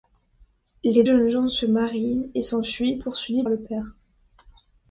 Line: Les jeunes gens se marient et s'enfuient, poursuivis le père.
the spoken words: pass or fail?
pass